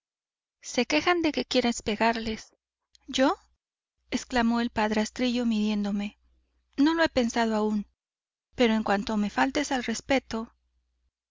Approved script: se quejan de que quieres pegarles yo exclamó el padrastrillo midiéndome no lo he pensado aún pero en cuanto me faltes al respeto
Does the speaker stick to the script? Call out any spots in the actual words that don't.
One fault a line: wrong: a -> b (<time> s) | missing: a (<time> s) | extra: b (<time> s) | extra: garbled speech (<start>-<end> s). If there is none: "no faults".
no faults